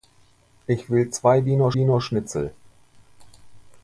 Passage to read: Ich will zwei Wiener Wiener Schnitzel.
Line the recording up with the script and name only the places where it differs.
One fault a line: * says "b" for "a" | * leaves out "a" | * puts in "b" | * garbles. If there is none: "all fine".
all fine